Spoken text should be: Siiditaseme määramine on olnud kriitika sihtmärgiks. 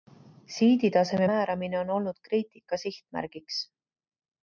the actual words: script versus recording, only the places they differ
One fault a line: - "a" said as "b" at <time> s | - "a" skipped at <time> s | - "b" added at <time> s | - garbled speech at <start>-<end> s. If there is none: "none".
none